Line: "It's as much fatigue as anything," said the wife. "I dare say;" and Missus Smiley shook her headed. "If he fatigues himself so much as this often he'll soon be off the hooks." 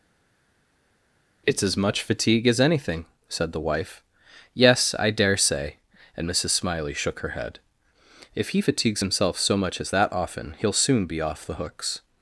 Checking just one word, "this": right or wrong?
wrong